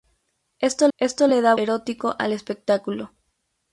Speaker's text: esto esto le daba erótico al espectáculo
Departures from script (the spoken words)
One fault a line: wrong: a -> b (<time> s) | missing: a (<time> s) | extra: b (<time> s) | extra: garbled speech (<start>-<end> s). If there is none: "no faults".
no faults